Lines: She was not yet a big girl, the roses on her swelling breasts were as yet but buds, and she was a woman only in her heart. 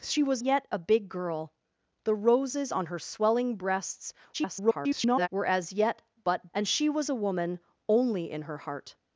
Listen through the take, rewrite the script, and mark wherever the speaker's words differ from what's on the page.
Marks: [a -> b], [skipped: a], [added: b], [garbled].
She was [skipped: not] yet a big girl, the roses on her swelling breasts [garbled] were as yet but [skipped: buds,] and she was a woman only in her heart.